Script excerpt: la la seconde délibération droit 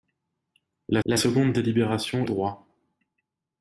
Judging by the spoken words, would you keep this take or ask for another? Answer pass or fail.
pass